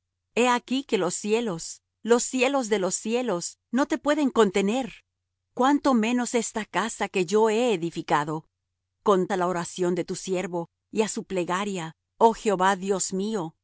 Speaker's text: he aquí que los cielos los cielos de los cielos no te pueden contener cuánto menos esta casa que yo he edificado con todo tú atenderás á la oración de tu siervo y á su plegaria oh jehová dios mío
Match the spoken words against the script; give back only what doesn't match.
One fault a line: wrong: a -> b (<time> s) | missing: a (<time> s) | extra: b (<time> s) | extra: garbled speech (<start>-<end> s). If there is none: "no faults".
missing: todo tú atenderás (9.3 s)